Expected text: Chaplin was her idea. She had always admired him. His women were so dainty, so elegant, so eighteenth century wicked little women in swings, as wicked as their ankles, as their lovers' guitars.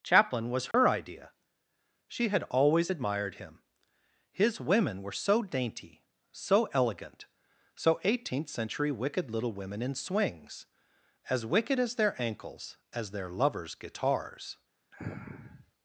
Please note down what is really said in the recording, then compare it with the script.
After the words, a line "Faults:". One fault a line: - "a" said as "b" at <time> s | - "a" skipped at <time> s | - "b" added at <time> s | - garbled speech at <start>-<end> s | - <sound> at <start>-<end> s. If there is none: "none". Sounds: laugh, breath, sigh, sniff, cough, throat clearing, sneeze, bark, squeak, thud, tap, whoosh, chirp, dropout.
Chaplin was her idea. She had always admired him. His women were so dainty, so elegant, so eighteenth century wicked little women in swings, as wicked as their ankles, as their lovers' guitars.
Faults:
- dropout at 0.7-0.7 s
- sniff at 14.9-15.7 s